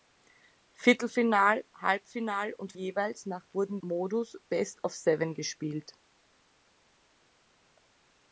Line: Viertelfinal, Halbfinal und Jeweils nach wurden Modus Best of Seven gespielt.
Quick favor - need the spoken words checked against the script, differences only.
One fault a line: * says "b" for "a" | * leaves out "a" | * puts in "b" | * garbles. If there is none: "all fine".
all fine